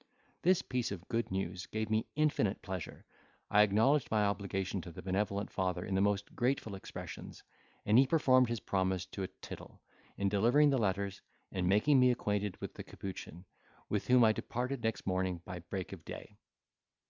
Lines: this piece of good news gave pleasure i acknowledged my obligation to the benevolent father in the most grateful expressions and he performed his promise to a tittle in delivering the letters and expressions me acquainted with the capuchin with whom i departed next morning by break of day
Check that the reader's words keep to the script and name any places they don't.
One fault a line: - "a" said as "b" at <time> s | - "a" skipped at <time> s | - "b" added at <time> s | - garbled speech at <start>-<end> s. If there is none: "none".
- "me infinite" added at 1.9 s
- "expressions" said as "making" at 11.7 s